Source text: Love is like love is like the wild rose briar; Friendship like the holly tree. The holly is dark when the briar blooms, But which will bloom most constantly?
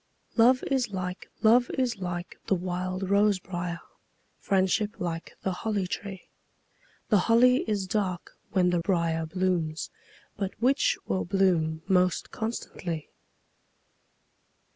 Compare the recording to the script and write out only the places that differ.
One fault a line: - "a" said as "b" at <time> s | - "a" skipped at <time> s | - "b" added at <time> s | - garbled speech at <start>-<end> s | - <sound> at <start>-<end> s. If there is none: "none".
none